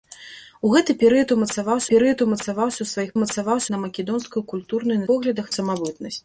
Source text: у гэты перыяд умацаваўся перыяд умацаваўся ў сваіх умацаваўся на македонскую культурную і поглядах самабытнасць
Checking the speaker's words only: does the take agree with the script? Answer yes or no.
yes